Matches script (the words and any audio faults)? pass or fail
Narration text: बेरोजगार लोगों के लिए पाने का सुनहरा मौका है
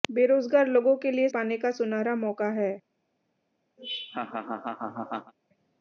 fail